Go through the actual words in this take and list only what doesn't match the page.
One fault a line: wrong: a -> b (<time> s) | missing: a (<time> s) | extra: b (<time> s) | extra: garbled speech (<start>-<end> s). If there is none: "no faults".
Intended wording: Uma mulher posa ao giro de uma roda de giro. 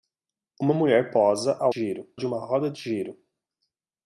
no faults